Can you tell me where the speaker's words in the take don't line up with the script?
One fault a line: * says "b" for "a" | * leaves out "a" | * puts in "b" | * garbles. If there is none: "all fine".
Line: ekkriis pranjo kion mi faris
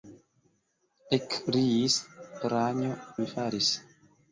* leaves out "kion"